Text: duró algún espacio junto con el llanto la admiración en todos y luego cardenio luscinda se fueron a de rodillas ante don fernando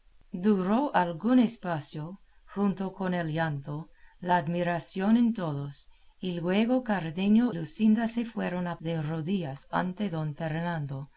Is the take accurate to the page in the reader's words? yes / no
yes